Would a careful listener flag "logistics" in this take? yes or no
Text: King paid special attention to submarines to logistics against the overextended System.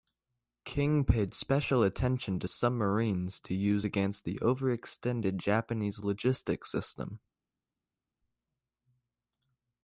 yes